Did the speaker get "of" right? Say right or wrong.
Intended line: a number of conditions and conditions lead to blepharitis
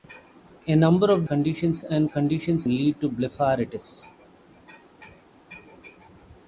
right